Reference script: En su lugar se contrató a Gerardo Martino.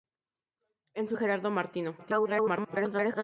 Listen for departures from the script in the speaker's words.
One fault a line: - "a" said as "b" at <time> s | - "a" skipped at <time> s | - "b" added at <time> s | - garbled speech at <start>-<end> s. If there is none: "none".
- "lugar se contrató" skipped at 1.2 s
- garbled speech at 2.0-3.2 s